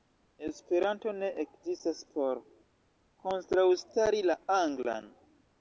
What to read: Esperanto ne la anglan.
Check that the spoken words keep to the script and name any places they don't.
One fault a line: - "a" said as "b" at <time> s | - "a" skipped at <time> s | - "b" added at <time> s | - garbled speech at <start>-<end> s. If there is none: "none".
- "ekzistas por kontraŭstari" added at 1.4 s